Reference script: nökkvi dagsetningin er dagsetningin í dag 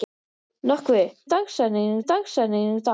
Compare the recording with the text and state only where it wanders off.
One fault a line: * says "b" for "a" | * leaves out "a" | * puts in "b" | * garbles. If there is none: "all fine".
all fine